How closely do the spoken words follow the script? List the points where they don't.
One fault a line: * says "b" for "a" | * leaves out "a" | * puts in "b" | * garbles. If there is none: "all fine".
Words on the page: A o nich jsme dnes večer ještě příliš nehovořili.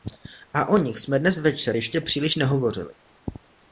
all fine